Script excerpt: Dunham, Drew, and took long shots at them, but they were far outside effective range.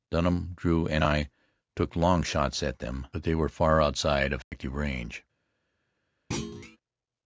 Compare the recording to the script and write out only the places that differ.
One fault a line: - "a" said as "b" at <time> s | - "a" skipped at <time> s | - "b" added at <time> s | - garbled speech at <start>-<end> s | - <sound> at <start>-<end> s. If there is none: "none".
- "I" added at 1.0 s
- dropout at 4.4-4.5 s
- thud at 6.3-6.8 s